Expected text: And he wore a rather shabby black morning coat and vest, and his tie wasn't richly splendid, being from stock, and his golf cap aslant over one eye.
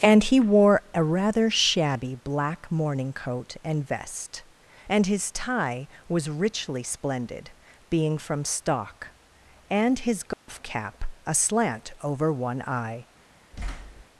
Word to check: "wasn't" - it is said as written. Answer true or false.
false